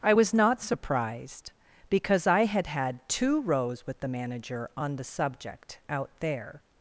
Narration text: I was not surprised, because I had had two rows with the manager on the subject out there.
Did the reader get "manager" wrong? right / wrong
right